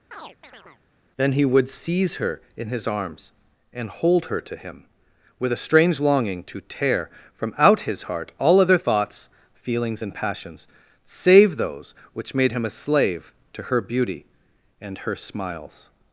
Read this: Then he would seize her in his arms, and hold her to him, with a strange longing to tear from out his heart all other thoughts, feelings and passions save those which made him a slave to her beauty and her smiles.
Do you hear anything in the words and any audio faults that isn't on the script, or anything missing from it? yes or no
yes